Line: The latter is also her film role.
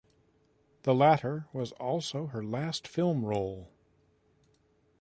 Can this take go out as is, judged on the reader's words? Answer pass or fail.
fail